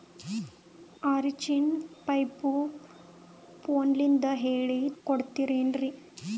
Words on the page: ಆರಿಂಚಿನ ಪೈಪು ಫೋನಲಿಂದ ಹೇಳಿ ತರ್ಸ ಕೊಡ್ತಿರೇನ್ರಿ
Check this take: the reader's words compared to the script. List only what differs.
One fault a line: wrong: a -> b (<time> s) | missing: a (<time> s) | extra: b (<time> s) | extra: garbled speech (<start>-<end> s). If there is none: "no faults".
missing: ತರ್ಸ (4.9 s)